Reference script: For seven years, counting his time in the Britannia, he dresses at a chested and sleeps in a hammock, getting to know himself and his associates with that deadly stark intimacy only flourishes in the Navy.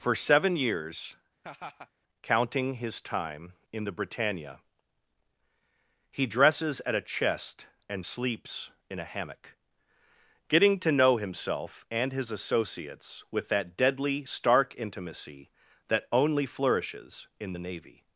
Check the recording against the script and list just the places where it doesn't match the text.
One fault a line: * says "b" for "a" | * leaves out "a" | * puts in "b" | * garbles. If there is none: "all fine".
* says "chest" for "chested"
* puts in "that"